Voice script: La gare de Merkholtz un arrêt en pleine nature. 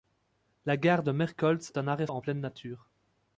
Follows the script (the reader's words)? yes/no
yes